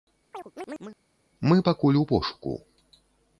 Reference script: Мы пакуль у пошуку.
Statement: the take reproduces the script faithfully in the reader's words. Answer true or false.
true